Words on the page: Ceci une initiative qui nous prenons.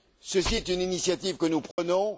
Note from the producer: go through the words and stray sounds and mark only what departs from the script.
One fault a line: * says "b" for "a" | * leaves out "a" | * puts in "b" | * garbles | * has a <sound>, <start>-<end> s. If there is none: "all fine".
* puts in "est"
* says "que" for "qui"
* has a dropout, 1.7-1.8 s